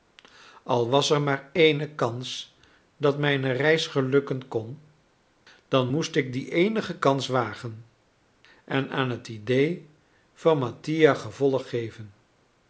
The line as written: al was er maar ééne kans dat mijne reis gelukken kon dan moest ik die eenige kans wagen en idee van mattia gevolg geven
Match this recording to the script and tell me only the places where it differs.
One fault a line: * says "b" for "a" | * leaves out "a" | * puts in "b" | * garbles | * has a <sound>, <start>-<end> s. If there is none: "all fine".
* puts in "aan het"